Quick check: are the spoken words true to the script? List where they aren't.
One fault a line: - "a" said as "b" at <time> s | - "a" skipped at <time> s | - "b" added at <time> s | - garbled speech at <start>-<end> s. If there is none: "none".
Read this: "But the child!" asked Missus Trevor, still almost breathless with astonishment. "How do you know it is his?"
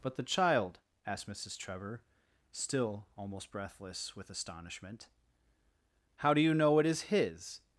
none